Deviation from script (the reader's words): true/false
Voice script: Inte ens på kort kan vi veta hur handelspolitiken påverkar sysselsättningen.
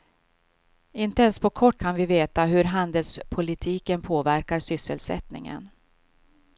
false